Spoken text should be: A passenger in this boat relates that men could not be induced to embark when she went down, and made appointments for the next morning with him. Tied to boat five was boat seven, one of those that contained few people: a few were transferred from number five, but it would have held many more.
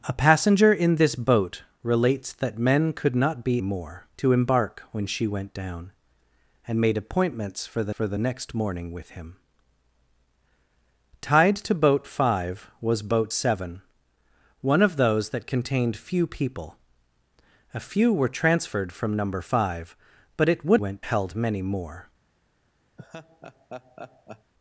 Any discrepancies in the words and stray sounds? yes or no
yes